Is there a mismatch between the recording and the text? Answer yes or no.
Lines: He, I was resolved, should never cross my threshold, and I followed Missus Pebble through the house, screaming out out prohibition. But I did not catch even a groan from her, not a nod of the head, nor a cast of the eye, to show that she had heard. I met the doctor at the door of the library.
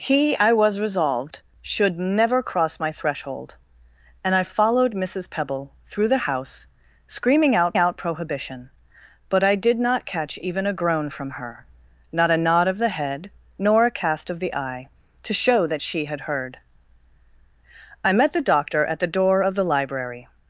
no